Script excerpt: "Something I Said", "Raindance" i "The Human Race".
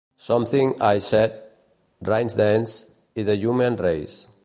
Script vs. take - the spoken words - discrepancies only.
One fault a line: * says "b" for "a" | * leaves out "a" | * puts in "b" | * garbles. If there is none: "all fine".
all fine